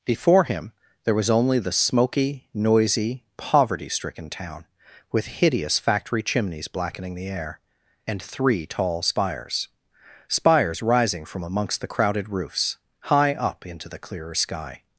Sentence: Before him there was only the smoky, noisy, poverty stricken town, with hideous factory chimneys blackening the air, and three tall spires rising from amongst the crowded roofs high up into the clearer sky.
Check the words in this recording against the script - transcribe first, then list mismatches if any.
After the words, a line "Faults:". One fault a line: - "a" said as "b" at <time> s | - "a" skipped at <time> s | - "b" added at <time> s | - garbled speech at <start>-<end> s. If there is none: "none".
Before him there was only the smoky, noisy, poverty stricken town, with hideous factory chimneys blackening the air, and three tall spires spires rising from amongst the crowded roofs high up into the clearer sky.
Faults:
- "spires" added at 10.3 s